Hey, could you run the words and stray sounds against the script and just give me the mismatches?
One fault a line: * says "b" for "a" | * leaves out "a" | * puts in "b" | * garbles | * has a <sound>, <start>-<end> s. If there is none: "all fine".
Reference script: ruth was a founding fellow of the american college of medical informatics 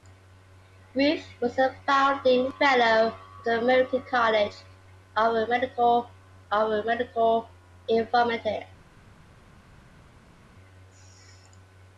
* puts in "of medical"